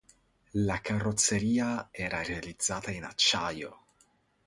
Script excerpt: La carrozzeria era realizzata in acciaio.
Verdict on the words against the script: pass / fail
pass